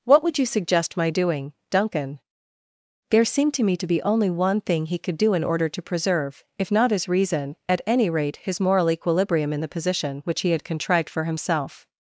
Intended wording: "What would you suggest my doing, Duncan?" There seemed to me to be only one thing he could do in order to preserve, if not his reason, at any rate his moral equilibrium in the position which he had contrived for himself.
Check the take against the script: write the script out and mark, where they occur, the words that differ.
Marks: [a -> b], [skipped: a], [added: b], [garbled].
"What would you suggest my doing, Duncan?" There seemed to me to be only one thing he could do in order to preserve, if not his reason, at any rate his moral equilibrium in the position which he had contrived for himself.